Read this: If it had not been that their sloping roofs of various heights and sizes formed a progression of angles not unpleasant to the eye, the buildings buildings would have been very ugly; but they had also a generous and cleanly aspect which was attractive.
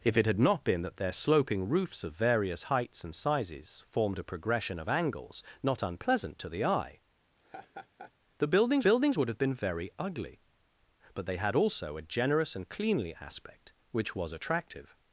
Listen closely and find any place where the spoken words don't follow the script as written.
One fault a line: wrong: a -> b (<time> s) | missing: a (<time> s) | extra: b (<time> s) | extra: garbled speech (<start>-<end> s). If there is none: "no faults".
no faults